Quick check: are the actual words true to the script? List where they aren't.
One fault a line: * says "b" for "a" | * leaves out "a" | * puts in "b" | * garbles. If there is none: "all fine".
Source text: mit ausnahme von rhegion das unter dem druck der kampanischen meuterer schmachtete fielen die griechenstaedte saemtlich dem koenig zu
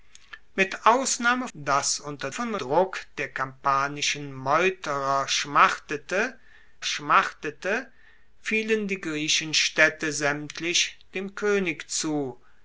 * leaves out "von rhegion"
* says "von" for "dem"
* puts in "schmachtete"